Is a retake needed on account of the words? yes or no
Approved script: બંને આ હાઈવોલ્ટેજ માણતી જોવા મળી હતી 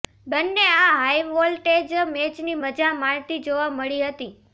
yes